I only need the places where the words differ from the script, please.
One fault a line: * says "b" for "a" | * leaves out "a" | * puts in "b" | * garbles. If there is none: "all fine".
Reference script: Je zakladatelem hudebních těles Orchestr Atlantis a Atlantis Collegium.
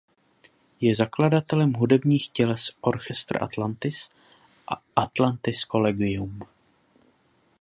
all fine